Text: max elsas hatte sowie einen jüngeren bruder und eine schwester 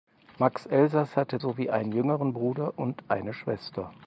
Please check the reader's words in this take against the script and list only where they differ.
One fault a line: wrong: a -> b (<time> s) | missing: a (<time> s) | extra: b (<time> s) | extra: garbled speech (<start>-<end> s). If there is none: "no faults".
no faults